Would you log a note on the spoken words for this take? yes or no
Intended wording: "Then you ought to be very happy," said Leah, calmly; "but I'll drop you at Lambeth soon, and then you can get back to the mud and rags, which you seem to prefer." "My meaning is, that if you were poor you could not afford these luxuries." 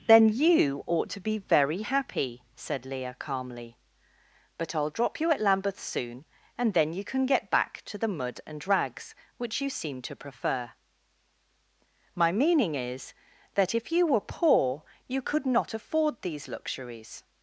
no